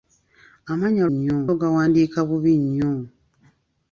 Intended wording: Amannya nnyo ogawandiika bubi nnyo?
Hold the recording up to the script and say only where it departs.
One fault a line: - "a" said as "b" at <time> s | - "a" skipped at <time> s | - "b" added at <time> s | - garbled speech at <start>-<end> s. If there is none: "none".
none